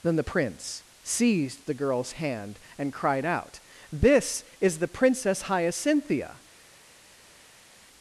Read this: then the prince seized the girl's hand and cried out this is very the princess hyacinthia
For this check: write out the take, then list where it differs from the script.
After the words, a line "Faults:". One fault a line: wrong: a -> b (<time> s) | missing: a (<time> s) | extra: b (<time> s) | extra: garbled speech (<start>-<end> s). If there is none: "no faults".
then the prince seized the girl's hand and cried out this is the princess hyacinthia
Faults:
missing: very (4.8 s)